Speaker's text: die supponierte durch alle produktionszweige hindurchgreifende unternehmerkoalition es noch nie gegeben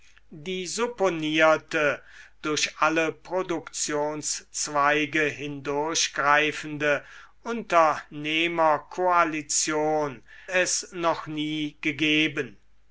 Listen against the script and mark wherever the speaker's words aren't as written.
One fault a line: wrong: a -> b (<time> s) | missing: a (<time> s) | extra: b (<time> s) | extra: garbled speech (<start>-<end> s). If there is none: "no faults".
no faults